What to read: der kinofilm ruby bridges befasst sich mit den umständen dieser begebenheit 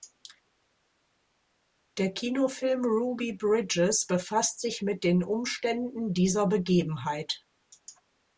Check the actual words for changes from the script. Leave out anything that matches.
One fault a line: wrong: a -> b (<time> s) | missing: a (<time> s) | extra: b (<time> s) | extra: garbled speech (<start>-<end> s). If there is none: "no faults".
no faults